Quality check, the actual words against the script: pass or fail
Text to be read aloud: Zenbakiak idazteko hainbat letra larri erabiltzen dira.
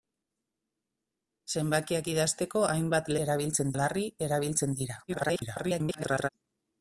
fail